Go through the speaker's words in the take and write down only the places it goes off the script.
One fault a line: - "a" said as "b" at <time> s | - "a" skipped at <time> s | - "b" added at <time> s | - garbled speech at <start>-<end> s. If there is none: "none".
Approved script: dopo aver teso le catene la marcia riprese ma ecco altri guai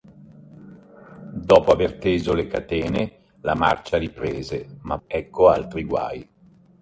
none